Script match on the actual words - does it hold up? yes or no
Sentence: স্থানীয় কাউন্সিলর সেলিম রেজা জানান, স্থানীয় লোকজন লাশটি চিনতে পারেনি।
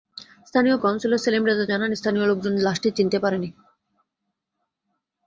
yes